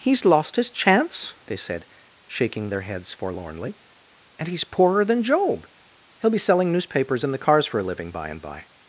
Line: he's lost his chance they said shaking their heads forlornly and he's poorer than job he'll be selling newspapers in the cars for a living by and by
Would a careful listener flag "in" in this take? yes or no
no